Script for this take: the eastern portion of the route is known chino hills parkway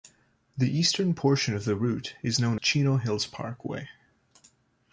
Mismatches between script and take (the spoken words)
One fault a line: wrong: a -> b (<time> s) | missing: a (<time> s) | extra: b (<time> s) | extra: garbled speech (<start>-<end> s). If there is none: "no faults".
no faults